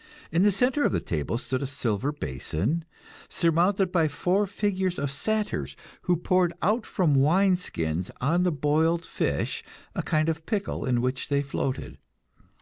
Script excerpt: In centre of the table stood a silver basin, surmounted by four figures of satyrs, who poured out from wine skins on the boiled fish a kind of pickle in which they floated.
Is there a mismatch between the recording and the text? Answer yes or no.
yes